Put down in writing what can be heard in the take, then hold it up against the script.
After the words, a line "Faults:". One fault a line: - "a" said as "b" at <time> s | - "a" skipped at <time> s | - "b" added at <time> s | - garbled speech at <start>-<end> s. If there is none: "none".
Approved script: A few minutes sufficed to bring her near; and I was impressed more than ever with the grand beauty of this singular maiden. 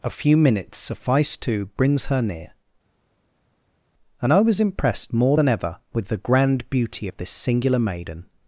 A few minutes sufficed to brings her near; and I was impressed more than ever with the grand beauty of this singular maiden.
Faults:
- "bring" said as "brings" at 1.8 s